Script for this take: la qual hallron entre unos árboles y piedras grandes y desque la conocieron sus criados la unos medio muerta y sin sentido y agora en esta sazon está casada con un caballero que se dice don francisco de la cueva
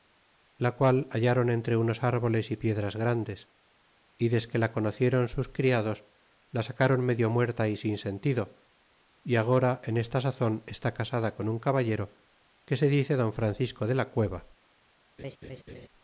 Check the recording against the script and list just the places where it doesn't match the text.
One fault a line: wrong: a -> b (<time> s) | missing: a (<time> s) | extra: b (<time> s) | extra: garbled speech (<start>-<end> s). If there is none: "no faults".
wrong: unos -> sacron (6.6 s)